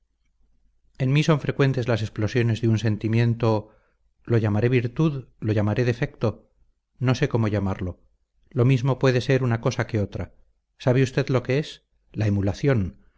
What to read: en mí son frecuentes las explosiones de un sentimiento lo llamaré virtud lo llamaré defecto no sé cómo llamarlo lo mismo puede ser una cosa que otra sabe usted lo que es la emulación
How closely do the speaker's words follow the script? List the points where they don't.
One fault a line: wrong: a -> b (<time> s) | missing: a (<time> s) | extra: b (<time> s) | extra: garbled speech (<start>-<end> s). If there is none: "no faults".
no faults